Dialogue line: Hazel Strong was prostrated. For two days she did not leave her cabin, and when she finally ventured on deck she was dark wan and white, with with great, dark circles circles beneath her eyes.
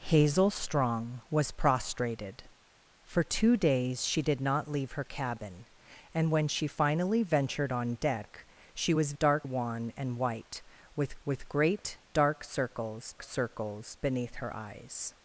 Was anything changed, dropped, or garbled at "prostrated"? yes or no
no